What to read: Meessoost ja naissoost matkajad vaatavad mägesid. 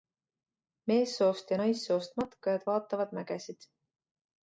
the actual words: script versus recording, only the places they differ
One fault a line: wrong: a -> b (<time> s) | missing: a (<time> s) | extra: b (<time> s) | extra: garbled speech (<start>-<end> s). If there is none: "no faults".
no faults